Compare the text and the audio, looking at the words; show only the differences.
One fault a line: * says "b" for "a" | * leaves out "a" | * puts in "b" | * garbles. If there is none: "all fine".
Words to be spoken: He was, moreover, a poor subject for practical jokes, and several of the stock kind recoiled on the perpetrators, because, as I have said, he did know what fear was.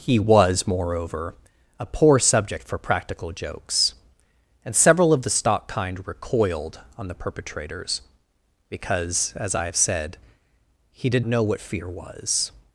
all fine